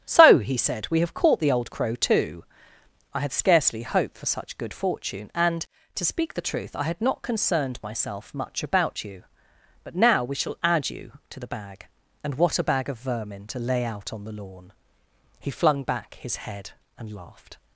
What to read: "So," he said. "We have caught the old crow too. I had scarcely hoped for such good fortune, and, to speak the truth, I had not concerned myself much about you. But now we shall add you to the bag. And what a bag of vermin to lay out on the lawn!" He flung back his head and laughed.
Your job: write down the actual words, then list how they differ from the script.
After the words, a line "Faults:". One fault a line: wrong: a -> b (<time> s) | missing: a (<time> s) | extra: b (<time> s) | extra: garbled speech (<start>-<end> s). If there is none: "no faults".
"So," he said. "We have caught the old crow too. I had scarcely hoped for such good fortune, and, to speak the truth, I had not concerned myself much about you. But now we shall add you to the bag. And what a bag of vermin to lay out on the lawn!" He flung back his head and laughed.
Faults:
no faults